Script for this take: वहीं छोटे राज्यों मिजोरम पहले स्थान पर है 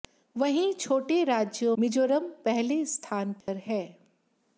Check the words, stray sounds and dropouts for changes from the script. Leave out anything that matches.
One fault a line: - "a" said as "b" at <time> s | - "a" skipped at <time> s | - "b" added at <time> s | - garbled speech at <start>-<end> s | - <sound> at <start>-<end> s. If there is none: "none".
- dropout at 3.4-3.5 s